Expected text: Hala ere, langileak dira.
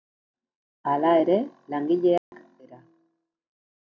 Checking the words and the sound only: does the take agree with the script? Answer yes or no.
no